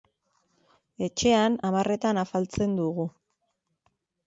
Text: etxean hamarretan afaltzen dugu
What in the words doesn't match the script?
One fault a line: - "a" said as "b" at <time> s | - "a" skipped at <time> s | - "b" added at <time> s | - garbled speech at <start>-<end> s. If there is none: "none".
none